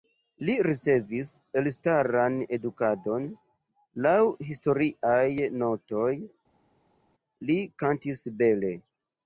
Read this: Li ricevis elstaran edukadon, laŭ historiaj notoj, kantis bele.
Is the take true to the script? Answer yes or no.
no